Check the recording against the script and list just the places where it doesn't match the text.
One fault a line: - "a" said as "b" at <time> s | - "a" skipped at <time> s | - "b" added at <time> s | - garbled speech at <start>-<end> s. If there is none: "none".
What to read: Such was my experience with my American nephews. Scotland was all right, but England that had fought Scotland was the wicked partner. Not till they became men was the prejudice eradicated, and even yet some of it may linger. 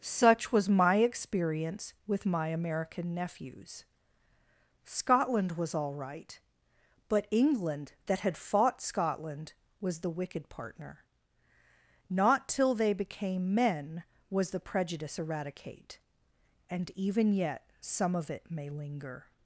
- "eradicated" said as "eradicate" at 15.2 s